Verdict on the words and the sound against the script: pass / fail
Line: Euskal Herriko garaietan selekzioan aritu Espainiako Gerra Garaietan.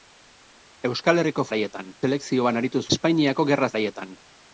pass